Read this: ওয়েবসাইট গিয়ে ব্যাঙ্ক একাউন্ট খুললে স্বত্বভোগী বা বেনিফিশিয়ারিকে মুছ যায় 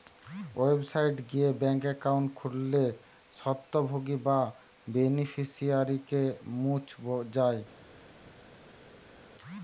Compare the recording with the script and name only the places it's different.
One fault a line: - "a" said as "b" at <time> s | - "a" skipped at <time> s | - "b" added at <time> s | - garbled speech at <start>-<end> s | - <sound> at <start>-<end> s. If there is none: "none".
none